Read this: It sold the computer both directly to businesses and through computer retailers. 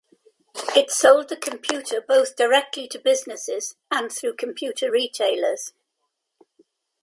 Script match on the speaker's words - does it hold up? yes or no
yes